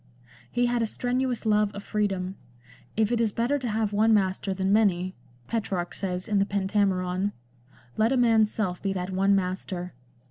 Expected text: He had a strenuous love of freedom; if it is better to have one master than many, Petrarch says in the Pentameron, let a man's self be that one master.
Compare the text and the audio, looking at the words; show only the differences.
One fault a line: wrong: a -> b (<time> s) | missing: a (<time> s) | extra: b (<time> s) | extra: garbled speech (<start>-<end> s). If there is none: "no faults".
no faults